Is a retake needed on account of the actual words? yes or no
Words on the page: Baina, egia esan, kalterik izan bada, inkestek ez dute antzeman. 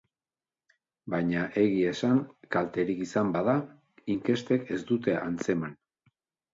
no